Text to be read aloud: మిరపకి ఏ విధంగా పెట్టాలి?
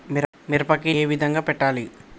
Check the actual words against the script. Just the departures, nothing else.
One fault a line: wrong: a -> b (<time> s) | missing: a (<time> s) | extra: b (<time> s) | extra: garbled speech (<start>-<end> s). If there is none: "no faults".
no faults